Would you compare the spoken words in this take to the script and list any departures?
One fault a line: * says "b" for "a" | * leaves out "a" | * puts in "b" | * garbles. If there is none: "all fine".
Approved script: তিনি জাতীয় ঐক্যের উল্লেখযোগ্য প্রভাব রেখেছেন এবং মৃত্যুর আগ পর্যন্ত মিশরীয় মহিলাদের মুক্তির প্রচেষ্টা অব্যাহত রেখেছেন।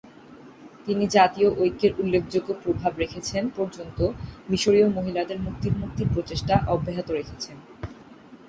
* leaves out "এবং মৃত্যুর আগ"
* puts in "মুক্তির"